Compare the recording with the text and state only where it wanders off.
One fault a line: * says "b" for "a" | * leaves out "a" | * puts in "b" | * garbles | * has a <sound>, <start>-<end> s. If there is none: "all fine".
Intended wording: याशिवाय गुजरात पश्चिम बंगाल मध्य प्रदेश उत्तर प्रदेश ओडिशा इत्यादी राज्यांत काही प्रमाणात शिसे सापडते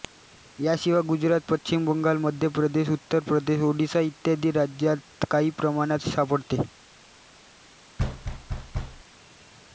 * leaves out "शिसे"
* has a thud, 8.0-9.0 s